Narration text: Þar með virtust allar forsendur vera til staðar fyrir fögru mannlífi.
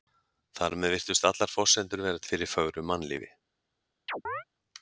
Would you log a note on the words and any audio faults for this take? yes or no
yes